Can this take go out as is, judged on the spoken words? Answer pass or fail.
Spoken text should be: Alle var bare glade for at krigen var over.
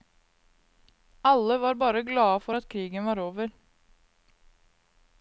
pass